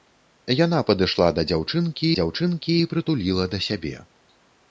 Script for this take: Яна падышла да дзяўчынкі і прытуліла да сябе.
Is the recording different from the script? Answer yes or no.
yes